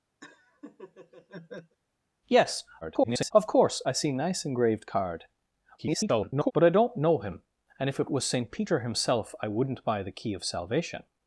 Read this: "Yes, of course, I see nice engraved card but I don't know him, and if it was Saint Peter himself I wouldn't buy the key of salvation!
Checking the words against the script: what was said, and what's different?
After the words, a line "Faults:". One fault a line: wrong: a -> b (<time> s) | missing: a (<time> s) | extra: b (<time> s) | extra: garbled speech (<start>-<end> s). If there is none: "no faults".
"Yes, [garbled] of course, I see nice engraved card [garbled] but I don't know him, and if it was Saint Peter himself I wouldn't buy the key of salvation!
Faults:
extra: garbled speech (2.8-3.3 s)
extra: garbled speech (5.8-6.5 s)